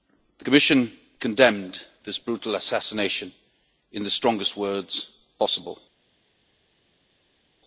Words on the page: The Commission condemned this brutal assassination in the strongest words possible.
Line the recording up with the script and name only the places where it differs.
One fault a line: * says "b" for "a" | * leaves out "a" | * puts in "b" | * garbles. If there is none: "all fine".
all fine